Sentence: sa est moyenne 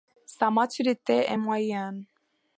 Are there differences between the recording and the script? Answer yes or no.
yes